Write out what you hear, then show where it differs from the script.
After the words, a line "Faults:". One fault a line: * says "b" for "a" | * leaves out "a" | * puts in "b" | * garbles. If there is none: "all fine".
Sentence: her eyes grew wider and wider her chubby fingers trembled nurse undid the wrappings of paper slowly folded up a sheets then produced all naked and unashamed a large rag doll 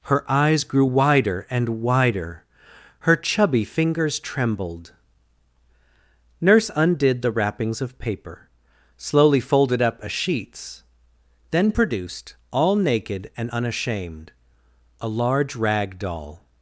her eyes grew wider and wider her chubby fingers trembled nurse undid the wrappings of paper slowly folded up a sheets then produced all naked and unashamed a large rag doll
Faults:
all fine